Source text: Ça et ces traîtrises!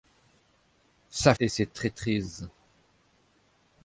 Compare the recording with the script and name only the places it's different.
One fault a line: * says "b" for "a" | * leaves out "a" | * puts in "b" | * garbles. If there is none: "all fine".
all fine